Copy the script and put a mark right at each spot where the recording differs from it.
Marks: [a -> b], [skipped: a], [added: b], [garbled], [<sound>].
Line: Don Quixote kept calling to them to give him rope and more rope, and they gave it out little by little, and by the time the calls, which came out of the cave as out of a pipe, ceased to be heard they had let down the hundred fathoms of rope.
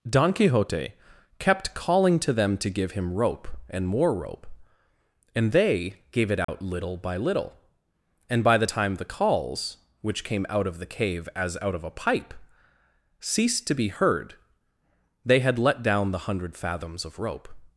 Don Quixote kept calling to them to give him rope and more rope, and they gave it out [dropout] little by little, and by the time the calls, which came out of the cave as out of a pipe, ceased to be heard they had let down the hundred fathoms of rope.